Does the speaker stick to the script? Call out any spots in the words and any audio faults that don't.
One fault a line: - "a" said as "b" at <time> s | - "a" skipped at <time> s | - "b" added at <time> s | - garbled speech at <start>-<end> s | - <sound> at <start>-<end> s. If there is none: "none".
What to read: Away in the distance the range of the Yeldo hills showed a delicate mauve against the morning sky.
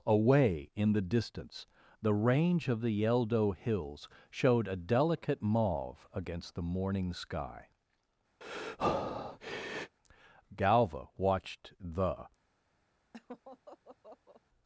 - breath at 8.4-10.0 s
- "Galva watched the" added at 10.5 s
- laugh at 13.1-14.4 s